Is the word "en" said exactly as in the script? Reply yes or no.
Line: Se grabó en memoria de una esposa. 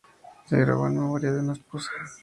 yes